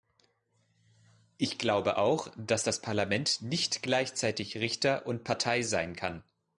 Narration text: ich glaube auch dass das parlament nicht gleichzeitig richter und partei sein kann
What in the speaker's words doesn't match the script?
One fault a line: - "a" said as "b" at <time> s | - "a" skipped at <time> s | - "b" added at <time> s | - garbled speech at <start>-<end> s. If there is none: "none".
none